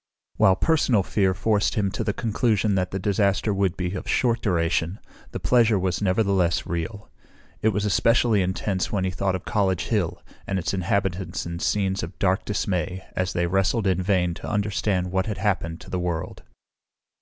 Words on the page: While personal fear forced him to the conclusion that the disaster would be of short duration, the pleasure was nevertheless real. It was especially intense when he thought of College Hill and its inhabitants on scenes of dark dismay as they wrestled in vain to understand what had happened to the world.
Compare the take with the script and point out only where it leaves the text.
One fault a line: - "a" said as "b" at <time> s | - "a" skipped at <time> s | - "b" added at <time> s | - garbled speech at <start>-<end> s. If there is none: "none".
- "on" said as "in" at 11.4 s